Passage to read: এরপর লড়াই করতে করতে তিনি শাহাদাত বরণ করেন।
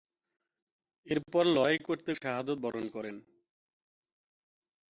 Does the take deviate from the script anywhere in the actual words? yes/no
yes